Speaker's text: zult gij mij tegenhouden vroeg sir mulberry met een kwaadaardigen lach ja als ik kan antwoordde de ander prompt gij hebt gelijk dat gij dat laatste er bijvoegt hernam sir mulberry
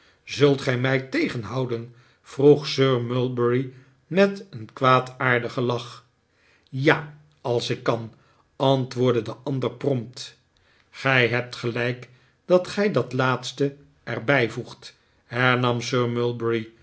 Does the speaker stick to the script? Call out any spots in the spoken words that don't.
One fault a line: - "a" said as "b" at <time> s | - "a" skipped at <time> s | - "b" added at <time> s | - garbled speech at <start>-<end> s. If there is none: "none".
none